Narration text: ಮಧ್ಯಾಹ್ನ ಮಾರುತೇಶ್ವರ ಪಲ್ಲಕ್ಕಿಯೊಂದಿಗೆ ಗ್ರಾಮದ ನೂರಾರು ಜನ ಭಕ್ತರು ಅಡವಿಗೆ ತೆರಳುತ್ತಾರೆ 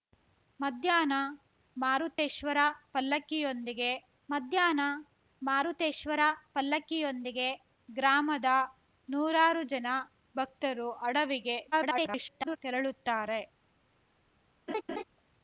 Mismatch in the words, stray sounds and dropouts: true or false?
true